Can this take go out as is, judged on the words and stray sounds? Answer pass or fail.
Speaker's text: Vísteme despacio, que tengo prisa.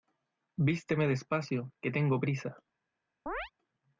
fail